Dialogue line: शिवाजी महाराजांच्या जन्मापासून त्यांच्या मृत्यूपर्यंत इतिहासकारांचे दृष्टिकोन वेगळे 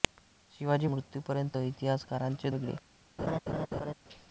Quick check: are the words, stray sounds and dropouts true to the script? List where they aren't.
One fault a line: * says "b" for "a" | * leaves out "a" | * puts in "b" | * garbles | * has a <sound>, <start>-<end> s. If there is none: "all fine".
* leaves out "महाराजांच्या जन्मापासून त्यांच्या"
* leaves out "दृष्टिकोन"
* has a laugh, 3.2-3.9 s